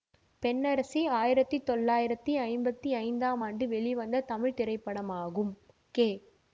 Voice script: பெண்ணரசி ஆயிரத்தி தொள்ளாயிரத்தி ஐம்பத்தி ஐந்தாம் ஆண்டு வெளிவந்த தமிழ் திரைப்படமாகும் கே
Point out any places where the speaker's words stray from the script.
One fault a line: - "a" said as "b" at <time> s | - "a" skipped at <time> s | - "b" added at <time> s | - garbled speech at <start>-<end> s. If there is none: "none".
none